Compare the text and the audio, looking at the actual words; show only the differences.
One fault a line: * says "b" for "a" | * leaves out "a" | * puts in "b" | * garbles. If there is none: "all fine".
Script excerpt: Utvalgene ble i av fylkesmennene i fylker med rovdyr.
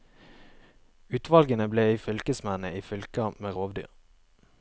all fine